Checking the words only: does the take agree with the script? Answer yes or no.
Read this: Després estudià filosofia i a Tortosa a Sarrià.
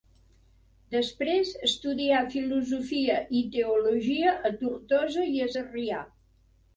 no